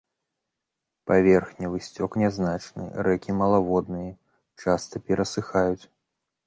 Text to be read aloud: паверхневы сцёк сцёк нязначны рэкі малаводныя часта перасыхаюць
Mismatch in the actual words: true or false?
true